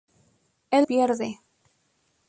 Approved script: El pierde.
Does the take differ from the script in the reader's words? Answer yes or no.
no